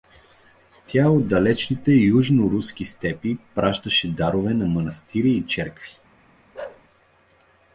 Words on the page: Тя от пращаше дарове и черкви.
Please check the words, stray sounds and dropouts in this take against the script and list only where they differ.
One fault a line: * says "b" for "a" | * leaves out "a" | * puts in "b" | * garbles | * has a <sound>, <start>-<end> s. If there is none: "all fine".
* puts in "далечните южноруски степи"
* puts in "на манастири"
* has a bark, 6.5-6.8 s